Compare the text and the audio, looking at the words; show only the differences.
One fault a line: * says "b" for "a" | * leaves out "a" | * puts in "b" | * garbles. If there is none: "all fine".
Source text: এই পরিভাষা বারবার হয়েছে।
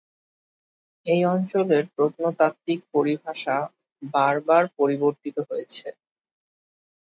* puts in "অঞ্চলের প্রত্নতাত্ত্বিক"
* puts in "পরিবর্তিত"